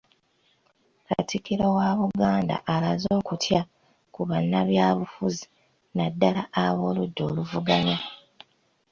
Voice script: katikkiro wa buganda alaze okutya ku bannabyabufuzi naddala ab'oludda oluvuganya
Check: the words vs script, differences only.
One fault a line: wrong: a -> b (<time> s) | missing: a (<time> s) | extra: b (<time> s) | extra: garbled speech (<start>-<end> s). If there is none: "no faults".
no faults